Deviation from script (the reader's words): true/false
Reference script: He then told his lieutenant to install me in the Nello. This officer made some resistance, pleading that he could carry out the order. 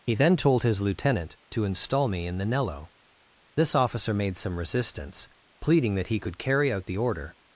false